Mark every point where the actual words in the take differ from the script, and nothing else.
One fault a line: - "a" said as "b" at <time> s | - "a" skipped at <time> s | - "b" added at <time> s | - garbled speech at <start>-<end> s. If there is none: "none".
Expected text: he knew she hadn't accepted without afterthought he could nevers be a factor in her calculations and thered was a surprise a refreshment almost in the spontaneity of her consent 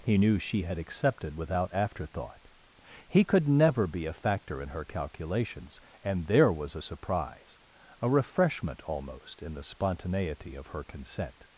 - "hadn't" said as "had" at 0.6 s
- "nevers" said as "never" at 3.5 s
- "thered" said as "there" at 6.3 s